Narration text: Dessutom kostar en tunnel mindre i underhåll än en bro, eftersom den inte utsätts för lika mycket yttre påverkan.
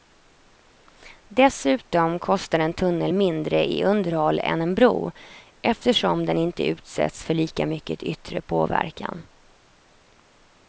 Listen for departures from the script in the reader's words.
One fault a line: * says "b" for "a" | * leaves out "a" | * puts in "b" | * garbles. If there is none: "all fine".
all fine